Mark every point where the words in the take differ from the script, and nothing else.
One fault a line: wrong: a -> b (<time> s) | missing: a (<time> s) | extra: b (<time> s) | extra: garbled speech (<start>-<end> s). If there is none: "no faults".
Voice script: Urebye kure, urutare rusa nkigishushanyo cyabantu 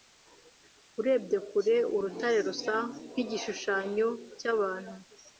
no faults